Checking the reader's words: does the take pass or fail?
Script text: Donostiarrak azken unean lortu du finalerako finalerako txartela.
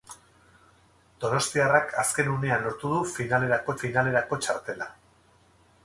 pass